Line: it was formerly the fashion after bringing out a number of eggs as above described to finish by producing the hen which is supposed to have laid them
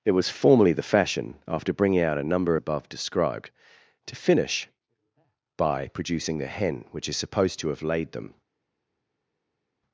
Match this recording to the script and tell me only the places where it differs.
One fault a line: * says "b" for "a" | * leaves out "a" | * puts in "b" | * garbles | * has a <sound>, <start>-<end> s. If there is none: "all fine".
* leaves out "of eggs as"